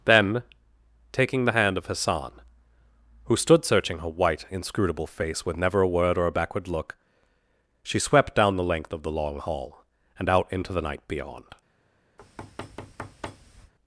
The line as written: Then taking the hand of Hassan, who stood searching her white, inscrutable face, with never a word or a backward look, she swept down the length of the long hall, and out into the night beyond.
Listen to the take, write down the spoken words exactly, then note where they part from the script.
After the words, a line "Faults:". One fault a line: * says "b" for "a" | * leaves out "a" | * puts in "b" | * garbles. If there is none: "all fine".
Then taking the hand of Hassan, who stood searching her white, inscrutable face, with never a word or a backward look, she swept down the length of the long hall, and out into the night beyond.
Faults:
all fine